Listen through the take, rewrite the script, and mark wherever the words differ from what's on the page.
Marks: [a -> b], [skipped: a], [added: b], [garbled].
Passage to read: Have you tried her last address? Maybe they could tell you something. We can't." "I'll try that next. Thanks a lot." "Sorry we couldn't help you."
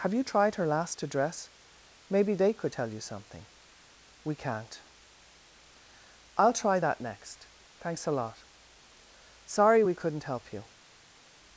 Have you tried her last address? Maybe they could tell you something. We can't." "I'll try that next. Thanks a lot." "Sorry we couldn't help you."